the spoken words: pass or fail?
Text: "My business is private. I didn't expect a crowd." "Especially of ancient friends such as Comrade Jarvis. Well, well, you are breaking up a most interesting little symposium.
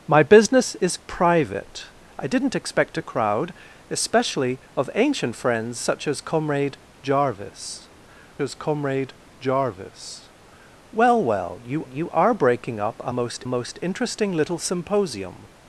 fail